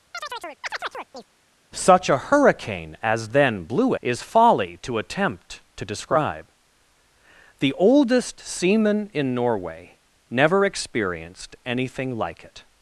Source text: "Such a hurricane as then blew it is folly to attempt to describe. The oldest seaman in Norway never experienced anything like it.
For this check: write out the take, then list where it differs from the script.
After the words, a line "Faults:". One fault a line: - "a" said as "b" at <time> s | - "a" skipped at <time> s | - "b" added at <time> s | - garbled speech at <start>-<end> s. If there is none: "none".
"Such a hurricane as then blew is folly to attempt to describe. The oldest seaman in Norway never experienced anything like it.
Faults:
- "it" skipped at 3.9 s